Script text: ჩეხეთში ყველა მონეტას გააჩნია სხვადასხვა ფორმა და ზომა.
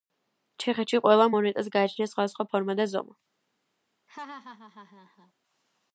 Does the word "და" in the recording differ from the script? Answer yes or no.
no